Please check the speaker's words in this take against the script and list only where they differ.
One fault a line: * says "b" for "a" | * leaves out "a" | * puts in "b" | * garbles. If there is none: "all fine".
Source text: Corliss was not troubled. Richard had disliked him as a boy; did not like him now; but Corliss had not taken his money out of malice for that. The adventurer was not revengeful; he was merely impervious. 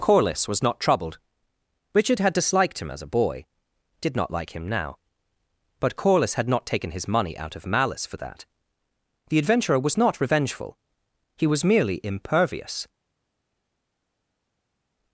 all fine